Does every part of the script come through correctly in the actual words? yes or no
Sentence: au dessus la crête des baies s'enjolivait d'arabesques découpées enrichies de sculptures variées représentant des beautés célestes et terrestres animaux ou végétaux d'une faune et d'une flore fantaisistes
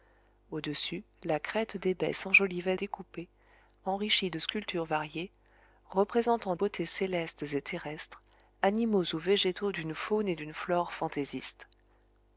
no